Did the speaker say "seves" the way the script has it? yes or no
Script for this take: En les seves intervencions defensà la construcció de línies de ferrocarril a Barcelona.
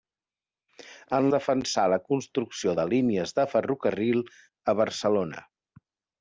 no